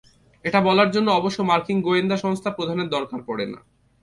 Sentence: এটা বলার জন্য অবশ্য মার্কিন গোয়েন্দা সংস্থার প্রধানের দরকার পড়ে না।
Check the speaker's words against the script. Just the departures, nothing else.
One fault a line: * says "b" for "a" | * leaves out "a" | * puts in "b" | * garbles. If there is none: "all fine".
all fine